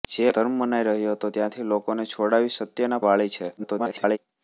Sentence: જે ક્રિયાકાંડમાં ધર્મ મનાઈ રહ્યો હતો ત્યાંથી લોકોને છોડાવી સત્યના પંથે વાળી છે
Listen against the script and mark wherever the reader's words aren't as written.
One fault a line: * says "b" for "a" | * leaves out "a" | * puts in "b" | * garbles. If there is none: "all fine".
* leaves out "ક્રિયાકાંડમાં"
* leaves out "પંથે"
* garbles